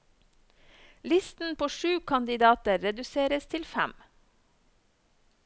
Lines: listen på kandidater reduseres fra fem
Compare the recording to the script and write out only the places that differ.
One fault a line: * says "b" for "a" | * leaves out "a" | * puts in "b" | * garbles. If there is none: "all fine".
* puts in "sju"
* says "til" for "fra"